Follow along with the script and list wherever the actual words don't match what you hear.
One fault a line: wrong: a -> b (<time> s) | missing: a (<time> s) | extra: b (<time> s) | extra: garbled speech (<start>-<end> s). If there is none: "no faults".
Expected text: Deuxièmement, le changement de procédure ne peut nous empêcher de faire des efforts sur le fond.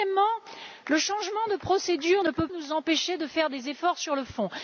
no faults